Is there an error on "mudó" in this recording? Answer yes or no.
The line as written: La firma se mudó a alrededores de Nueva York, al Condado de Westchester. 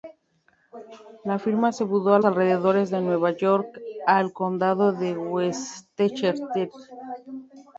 no